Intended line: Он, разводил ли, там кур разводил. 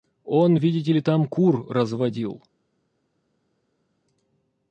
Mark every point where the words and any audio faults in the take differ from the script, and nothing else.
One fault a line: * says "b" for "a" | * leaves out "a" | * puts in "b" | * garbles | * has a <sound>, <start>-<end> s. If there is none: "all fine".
* says "видите" for "разводил"